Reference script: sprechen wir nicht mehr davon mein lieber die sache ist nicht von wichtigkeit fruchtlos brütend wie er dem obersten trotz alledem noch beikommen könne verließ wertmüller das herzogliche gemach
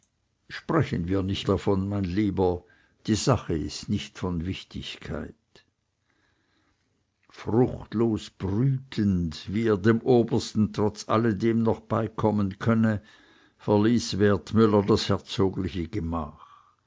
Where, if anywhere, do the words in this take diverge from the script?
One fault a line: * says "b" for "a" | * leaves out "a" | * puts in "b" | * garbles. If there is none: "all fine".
* leaves out "mehr"